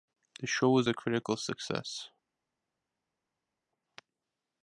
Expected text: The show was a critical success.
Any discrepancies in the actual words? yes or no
no